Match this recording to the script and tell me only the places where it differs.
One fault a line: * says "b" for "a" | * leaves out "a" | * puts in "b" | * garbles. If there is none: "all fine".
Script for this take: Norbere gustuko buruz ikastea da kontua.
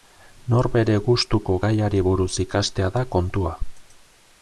* puts in "gaiari"